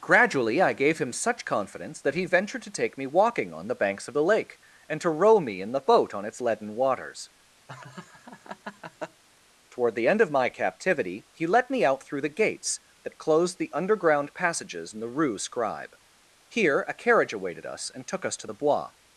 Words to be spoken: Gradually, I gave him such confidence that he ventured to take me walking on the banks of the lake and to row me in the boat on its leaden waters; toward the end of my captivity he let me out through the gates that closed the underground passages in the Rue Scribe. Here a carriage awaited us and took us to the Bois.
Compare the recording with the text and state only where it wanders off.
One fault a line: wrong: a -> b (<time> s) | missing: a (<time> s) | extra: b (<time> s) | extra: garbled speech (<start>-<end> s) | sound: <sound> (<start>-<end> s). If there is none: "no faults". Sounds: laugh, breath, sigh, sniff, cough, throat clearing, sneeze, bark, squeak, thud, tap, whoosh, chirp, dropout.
sound: laugh (7.7-9.2 s)